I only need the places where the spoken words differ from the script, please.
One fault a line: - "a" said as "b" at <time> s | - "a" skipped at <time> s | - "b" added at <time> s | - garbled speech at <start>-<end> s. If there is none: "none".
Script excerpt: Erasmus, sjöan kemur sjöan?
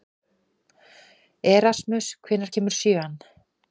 - "sjöan" said as "hvenær" at 2.2 s